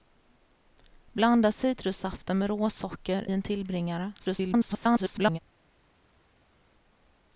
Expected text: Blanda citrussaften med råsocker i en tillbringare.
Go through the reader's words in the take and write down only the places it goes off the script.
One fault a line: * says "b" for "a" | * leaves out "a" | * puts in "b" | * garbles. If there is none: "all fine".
* leaves out "i"
* garbles